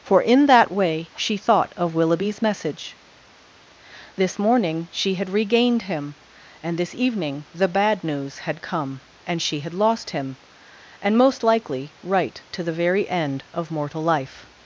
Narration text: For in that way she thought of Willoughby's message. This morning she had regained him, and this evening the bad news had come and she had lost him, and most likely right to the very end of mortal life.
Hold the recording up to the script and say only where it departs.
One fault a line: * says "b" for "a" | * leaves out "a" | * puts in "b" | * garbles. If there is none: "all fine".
all fine